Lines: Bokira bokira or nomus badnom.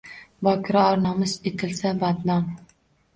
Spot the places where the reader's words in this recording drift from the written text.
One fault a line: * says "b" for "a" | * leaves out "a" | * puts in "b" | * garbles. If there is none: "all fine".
* leaves out "bokira"
* puts in "etilsa"